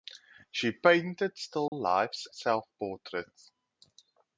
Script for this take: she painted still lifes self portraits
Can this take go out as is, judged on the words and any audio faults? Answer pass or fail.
fail